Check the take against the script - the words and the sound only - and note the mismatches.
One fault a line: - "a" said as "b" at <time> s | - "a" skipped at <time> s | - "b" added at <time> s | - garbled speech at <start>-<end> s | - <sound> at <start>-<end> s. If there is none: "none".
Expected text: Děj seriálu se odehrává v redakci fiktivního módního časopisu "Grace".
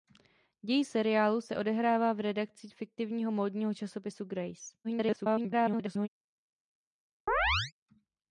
- garbled speech at 4.8-6.1 s
- chirp at 7.3-7.7 s